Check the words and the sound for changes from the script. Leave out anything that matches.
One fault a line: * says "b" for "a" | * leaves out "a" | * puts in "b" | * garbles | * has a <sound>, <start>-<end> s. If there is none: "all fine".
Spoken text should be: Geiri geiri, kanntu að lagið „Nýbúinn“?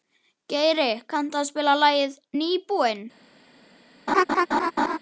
* leaves out "geiri"
* puts in "spila"
* has a laugh, 4.1-5.0 s